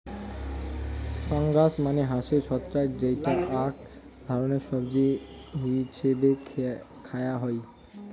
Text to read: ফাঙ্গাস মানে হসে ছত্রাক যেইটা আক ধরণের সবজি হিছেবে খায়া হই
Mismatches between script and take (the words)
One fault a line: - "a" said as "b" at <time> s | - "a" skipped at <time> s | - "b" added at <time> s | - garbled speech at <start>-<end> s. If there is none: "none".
none